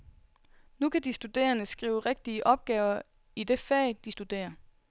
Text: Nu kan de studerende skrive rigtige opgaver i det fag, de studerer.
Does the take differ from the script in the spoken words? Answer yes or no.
no